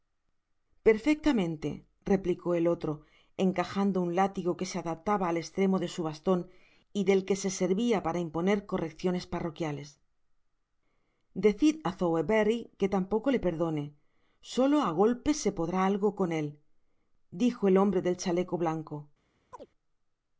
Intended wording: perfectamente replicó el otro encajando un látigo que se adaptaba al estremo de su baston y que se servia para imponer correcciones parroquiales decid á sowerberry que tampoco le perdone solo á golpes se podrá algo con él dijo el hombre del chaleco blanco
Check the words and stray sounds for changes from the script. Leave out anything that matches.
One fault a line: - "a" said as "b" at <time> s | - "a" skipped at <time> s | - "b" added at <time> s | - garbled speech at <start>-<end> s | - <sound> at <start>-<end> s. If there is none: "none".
- "del" added at 7.0 s
- chirp at 19.5-19.7 s